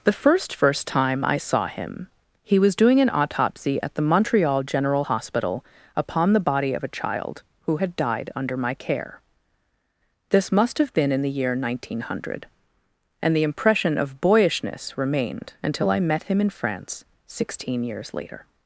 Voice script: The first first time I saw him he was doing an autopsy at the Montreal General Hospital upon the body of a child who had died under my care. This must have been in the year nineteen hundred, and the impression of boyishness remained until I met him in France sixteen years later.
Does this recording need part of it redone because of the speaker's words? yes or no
no